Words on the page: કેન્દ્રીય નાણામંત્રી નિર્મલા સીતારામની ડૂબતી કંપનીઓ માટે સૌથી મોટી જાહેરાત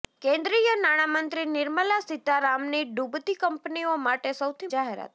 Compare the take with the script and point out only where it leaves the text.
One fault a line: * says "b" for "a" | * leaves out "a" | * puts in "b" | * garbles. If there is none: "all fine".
* leaves out "મોટી"